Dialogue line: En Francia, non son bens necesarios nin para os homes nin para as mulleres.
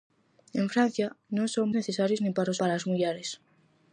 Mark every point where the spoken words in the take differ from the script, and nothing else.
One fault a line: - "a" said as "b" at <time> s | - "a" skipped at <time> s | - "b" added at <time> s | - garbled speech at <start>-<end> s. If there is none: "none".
- "bens" skipped at 1.7 s
- "homes nin" skipped at 2.6 s